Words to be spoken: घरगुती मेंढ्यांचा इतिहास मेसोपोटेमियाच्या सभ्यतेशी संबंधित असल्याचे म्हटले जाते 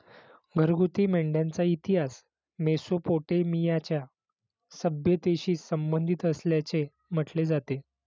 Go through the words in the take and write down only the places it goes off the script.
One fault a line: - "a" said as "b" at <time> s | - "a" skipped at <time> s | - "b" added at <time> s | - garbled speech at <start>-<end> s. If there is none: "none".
none